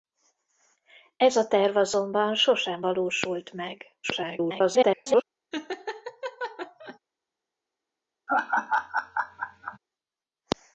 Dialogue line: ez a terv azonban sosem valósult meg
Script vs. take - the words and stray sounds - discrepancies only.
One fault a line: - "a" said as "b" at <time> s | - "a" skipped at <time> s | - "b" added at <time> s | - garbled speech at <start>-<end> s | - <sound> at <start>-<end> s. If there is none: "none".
- garbled speech at 4.0-5.2 s
- laugh at 5.5-7.0 s
- laugh at 8.3-9.8 s